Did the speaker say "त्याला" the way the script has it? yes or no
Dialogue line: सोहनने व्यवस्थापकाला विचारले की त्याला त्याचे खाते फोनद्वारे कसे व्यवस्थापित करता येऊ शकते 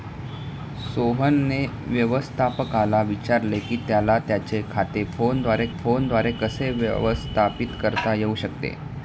yes